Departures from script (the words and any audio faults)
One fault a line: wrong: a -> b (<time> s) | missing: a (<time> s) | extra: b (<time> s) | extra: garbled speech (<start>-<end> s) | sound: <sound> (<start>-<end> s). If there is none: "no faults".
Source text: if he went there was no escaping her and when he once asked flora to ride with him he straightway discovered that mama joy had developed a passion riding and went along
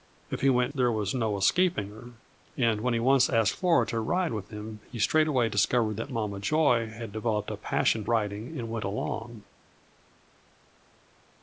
no faults